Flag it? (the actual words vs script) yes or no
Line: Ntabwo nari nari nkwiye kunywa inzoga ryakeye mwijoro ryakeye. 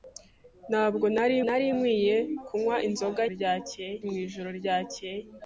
no